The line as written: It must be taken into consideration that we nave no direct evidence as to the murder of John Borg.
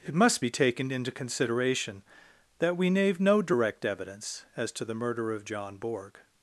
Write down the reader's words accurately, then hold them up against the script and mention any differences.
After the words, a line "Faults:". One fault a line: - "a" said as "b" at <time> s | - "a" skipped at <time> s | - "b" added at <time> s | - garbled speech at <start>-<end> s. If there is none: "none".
It must be taken into consideration that we nave no direct evidence as to the murder of John Borg.
Faults:
none